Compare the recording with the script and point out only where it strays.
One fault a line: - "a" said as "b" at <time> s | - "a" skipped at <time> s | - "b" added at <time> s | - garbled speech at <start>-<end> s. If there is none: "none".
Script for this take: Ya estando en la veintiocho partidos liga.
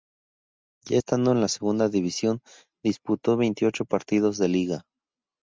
- "segunda división disputó" added at 1.5 s
- "de" added at 4.4 s